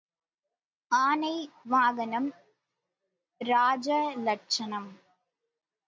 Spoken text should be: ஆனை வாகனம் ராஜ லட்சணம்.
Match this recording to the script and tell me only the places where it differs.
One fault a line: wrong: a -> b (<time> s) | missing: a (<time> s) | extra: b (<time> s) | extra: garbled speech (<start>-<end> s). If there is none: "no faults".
no faults